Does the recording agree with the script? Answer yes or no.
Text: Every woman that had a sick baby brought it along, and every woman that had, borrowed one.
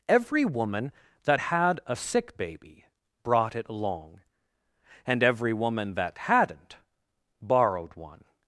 no